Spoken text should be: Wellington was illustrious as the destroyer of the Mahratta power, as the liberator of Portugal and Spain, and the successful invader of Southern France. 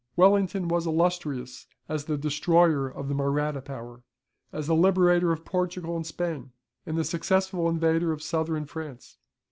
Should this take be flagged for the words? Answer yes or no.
no